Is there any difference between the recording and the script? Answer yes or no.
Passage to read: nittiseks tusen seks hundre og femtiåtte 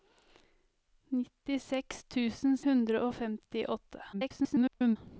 yes